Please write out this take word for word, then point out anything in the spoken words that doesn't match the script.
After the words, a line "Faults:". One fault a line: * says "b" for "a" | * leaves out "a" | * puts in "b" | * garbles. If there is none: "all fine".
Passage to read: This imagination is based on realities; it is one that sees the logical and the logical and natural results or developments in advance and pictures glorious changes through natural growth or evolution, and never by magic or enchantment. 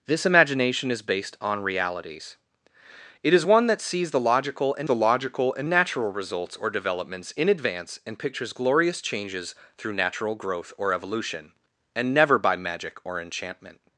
This imagination is based on realities; it is one that sees the logical and the logical and natural results or developments in advance and pictures glorious changes through natural growth or evolution, and never by magic or enchantment.
Faults:
all fine